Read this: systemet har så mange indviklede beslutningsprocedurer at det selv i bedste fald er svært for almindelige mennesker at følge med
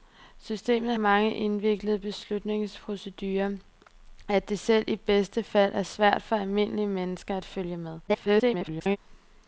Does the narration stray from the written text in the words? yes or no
yes